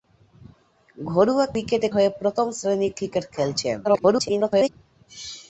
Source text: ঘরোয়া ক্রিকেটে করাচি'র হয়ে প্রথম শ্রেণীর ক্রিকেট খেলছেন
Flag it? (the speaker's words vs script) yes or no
yes